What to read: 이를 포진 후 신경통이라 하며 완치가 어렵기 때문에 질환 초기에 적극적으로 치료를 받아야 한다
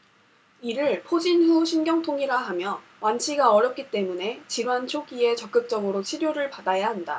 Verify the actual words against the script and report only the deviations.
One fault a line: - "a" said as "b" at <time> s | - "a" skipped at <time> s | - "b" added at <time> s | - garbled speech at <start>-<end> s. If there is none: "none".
none